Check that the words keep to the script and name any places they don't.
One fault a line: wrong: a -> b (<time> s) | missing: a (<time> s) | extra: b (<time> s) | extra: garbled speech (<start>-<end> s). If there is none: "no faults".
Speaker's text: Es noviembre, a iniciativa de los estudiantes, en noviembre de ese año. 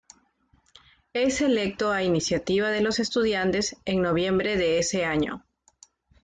wrong: noviembre -> electo (1.4 s)